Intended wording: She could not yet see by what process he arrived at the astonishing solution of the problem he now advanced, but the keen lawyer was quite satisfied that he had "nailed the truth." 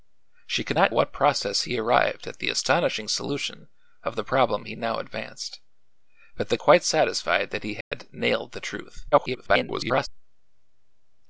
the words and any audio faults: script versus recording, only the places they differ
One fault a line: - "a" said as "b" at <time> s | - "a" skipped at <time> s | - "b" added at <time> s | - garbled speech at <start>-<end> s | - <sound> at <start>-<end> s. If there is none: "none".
- "yet see by" skipped at 0.9 s
- "keen lawyer was" skipped at 6.6 s
- dropout at 7.8-7.9 s
- garbled speech at 9.1-10.1 s